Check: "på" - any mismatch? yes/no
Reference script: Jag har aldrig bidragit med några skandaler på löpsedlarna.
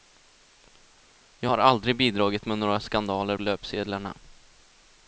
yes